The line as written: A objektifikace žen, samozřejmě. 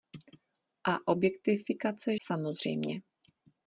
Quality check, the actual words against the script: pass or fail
fail